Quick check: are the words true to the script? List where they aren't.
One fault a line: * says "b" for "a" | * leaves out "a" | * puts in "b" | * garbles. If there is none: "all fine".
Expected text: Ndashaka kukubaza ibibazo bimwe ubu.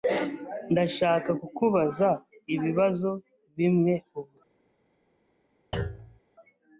all fine